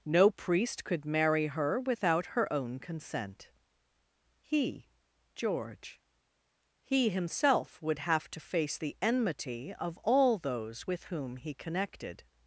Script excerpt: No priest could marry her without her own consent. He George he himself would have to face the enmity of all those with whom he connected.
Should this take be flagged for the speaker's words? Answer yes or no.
no